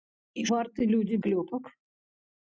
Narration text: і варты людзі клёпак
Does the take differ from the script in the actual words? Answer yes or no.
no